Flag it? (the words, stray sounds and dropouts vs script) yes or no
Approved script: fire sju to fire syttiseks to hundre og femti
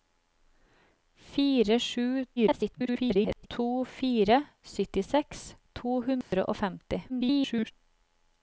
yes